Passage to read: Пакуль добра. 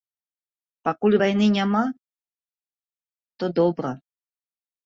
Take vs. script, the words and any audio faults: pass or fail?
fail